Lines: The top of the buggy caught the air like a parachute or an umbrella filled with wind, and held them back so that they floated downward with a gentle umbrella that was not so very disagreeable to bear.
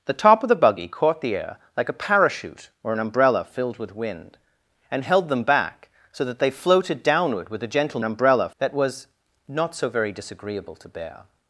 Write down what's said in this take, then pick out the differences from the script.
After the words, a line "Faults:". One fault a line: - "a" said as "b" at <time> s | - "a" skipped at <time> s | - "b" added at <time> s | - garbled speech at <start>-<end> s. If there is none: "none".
The top of the buggy caught the air like a parachute or an umbrella filled with wind, and held them back so that they floated downward with a gentle umbrella that was not so very disagreeable to bear.
Faults:
none